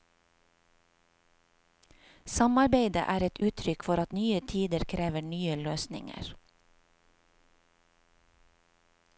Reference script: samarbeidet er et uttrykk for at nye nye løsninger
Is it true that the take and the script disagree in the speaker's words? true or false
true